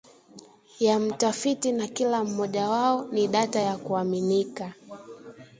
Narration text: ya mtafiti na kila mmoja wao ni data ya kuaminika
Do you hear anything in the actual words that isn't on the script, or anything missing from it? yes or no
no